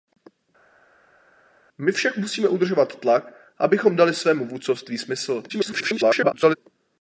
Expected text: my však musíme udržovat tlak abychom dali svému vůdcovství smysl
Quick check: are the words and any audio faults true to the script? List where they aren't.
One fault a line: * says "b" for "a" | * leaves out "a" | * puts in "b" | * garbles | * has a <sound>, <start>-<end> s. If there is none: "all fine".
* garbles